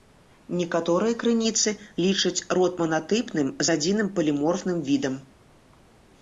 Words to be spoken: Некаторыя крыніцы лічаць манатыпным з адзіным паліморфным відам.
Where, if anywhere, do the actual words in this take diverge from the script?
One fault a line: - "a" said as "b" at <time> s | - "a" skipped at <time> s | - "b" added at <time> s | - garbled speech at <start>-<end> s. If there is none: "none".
- "род" added at 2.6 s